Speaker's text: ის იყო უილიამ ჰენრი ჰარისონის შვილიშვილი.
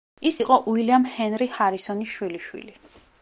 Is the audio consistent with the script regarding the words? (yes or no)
yes